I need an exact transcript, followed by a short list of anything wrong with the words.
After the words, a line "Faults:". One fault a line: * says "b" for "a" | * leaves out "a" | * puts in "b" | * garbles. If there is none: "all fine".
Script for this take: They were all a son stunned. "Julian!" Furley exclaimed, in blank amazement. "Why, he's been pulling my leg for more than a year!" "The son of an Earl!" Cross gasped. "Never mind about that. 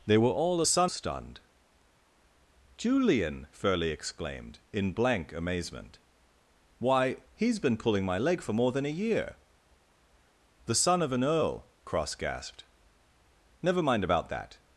They were all a son stunned. "Julian!" Furley exclaimed, in blank amazement. "Why, he's been pulling my leg for more than a year!" "The son of an Earl!" Cross gasped. "Never mind about that.
Faults:
all fine